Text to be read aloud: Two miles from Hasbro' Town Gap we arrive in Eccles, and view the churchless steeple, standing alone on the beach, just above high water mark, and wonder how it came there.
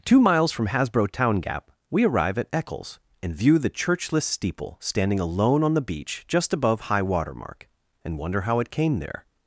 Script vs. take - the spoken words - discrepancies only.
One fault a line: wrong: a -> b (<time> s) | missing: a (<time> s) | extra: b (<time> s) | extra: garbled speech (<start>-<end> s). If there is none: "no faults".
wrong: in -> at (2.4 s)